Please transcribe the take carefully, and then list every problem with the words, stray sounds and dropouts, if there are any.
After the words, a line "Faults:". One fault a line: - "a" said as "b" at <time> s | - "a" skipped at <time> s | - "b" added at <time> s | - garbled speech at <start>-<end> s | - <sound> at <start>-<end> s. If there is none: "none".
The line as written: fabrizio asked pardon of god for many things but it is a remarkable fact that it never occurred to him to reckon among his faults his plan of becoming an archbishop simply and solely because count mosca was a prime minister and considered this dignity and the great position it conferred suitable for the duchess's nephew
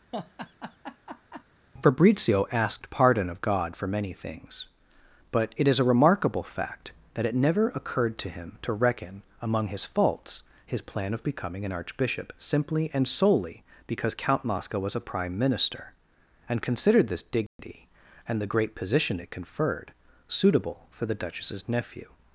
fabrizio asked pardon of god for many things but it is a remarkable fact that it never occurred to him to reckon among his faults his plan of becoming an archbishop simply and solely because count mosca was a prime minister and considered this dignity and the great position it conferred suitable for the duchess's nephew
Faults:
- laugh at 0.1-1.4 s
- dropout at 17.5-17.6 s